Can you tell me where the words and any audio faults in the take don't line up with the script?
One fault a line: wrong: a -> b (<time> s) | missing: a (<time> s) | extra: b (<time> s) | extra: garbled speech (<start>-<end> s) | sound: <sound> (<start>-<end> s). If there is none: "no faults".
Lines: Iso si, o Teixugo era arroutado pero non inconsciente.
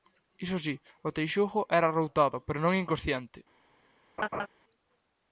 sound: laugh (4.2-4.5 s)